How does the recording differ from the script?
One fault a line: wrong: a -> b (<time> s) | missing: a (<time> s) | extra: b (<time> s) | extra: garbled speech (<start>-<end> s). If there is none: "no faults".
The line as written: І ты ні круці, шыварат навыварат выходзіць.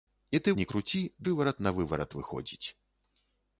no faults